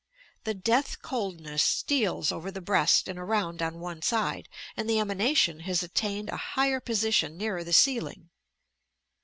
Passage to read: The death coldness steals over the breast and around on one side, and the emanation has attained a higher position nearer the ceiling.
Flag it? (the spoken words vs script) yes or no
no